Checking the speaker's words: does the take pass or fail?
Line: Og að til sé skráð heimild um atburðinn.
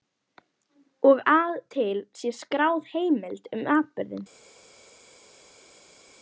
pass